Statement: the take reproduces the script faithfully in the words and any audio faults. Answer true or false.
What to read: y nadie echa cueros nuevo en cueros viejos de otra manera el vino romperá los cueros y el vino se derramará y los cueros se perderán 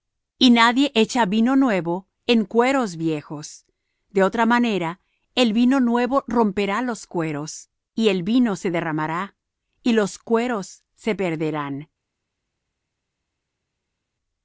false